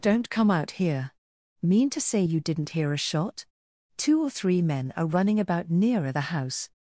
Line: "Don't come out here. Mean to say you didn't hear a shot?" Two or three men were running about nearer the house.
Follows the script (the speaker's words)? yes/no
no